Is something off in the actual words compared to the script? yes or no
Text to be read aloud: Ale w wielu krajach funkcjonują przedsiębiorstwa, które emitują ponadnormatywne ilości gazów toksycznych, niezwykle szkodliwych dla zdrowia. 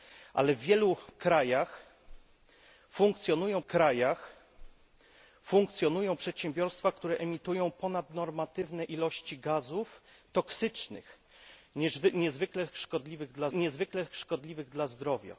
yes